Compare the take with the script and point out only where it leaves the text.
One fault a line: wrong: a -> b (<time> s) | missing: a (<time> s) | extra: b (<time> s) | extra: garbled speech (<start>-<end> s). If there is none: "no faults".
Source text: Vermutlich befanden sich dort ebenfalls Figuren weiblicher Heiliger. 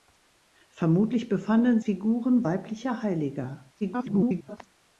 missing: sich dort ebenfalls (1.8 s)
extra: garbled speech (3.8-4.6 s)